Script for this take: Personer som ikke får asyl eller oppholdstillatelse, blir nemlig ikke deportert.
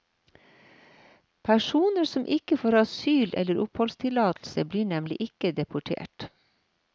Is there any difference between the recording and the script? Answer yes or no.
no